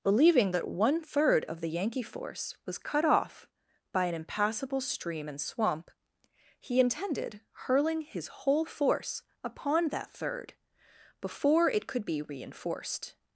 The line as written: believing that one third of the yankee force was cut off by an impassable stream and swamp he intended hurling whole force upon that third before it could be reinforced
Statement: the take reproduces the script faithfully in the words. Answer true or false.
false